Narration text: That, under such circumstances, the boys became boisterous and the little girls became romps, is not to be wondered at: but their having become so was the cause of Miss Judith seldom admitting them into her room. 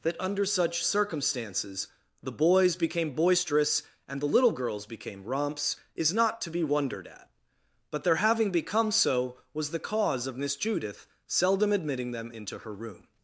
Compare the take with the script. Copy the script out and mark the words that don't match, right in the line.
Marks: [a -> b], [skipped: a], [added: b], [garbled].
That, under such circumstances, the boys became boisterous and the little girls became romps, is not to be wondered at: but their having become so was the cause of Miss Judith seldom admitting them into her room.